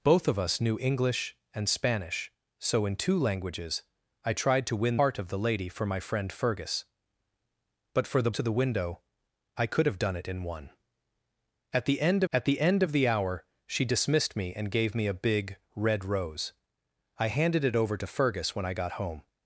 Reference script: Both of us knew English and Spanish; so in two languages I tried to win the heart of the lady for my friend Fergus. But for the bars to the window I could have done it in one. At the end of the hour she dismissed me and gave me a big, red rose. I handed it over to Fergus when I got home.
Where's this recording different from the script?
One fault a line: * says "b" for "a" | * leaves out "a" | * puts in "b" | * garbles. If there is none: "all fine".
* leaves out "the"
* leaves out "bars"
* puts in "at the end"